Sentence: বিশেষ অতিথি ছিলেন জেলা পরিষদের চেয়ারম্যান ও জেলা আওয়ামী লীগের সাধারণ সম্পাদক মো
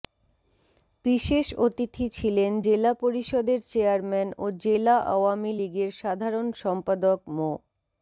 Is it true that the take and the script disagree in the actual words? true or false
false